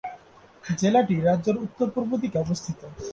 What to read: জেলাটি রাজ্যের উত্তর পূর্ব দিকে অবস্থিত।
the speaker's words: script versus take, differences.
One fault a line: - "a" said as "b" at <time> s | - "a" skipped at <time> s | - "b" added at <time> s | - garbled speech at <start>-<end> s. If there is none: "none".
none